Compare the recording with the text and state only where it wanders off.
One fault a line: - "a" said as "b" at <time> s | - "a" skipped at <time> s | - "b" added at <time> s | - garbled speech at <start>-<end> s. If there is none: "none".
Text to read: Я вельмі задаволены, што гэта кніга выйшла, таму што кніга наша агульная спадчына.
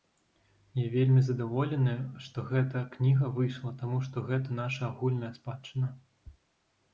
- "кніга" said as "гэта" at 4.3 s